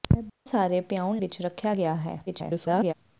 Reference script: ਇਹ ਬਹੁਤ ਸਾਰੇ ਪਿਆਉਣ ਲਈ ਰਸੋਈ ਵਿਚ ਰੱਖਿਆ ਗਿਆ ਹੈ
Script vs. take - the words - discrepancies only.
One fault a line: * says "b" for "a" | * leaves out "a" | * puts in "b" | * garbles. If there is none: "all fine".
* leaves out "ਬਹੁਤ"
* leaves out "ਲਈ ਰਸੋਈ"
* garbles